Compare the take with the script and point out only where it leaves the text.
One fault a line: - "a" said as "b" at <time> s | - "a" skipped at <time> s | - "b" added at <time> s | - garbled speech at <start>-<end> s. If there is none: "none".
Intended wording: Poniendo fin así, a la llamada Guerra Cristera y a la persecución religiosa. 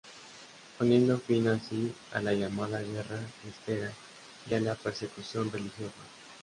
none